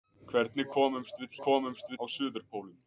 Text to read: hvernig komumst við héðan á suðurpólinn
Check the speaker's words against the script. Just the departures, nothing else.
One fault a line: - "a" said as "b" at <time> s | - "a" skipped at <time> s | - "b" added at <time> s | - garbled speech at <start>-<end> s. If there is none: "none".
- "héðan" said as "komumst" at 1.5 s